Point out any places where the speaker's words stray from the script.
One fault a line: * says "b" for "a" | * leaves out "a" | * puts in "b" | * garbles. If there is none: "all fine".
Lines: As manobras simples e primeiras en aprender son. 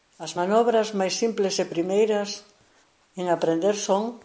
* puts in "máis"